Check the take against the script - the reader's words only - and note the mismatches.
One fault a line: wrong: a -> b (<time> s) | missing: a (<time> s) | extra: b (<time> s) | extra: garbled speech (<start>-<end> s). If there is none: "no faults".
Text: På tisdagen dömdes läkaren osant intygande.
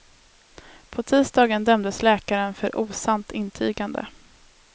extra: för (2.5 s)